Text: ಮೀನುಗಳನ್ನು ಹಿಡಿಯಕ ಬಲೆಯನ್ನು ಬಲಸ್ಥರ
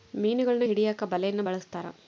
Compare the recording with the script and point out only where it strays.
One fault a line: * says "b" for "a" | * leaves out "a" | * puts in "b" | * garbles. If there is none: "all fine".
all fine